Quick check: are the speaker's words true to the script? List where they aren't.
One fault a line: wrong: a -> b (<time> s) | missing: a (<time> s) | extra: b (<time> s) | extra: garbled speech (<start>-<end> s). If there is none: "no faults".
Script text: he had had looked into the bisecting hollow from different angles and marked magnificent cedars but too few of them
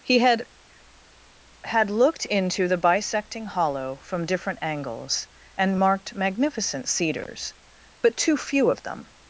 no faults